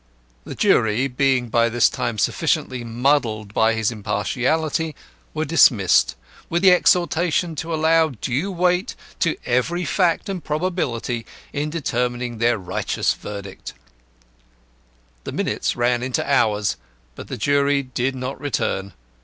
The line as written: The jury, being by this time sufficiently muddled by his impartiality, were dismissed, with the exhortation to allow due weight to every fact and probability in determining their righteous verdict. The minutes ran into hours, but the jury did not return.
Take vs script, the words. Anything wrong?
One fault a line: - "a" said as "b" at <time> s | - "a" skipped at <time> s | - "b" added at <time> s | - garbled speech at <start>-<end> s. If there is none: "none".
none